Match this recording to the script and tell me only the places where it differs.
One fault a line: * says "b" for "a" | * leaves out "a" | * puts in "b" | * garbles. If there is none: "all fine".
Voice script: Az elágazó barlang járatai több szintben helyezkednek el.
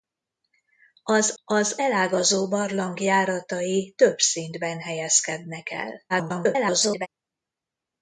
* puts in "az"
* garbles